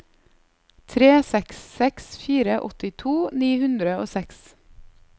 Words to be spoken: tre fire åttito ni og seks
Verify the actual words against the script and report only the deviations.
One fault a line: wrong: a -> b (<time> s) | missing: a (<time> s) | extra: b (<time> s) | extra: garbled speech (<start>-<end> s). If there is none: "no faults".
extra: seks seks (1.3 s)
extra: hundre (3.6 s)